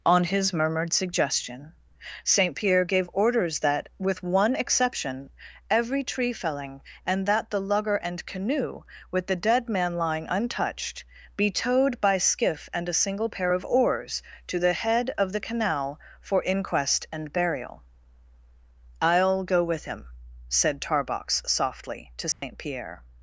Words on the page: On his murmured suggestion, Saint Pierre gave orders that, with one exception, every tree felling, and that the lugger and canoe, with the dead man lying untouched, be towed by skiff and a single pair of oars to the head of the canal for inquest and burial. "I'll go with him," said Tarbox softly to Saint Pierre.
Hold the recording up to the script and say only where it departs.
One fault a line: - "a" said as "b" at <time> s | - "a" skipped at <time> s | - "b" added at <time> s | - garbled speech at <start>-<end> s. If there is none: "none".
none